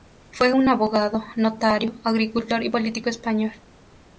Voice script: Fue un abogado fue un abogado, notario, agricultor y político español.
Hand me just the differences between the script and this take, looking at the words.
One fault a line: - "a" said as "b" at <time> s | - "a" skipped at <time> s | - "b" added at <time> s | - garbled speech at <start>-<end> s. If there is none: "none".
- "fue un abogado" skipped at 1.2 s